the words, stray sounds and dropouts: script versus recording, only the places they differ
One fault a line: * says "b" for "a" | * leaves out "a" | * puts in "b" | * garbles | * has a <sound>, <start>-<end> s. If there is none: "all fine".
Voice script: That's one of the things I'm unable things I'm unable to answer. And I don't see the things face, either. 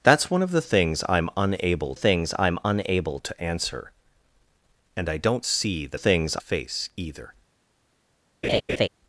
* has a laugh, 8.4-8.9 s